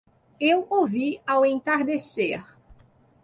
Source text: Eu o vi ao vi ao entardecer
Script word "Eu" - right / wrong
right